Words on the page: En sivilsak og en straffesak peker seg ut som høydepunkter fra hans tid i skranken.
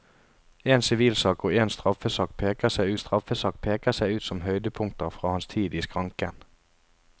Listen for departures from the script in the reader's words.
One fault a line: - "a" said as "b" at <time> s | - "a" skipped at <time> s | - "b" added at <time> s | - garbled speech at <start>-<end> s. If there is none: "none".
- "straffesak peker seg" added at 3.0 s